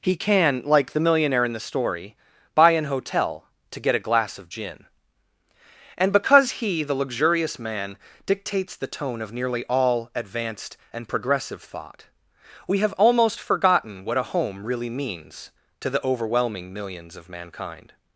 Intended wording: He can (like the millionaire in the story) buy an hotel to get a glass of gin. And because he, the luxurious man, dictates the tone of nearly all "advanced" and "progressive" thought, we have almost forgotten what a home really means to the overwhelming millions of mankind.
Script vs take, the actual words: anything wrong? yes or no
no